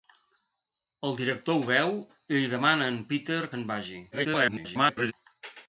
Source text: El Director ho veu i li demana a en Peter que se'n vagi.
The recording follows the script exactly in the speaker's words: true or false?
false